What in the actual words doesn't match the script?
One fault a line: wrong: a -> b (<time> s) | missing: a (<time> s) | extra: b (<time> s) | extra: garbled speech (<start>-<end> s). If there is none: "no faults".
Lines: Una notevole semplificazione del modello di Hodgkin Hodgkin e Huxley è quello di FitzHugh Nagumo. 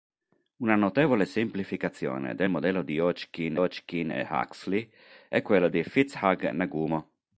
no faults